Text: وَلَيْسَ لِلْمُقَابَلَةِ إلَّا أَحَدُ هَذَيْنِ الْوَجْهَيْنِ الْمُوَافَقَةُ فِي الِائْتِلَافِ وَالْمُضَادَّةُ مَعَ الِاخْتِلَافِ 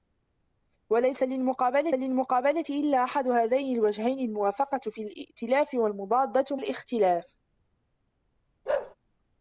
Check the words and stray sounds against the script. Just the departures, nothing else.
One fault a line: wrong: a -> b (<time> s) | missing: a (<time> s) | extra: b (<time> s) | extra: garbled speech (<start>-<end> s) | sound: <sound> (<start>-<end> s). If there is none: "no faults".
extra: لِلْمُقَابَلَةِ (1.9 s)
missing: مَعَ (6.6 s)
sound: bark (8.7-9.0 s)